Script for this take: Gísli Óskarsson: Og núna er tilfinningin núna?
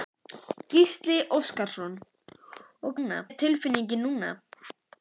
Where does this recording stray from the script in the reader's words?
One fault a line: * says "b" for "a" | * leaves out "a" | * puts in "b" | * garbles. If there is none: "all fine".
all fine